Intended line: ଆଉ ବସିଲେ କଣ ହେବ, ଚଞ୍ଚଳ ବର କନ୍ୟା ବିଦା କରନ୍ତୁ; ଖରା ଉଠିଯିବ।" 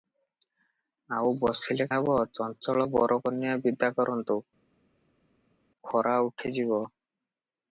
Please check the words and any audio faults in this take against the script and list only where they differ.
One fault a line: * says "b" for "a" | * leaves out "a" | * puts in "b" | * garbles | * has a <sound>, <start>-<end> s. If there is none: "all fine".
* leaves out "କଣ"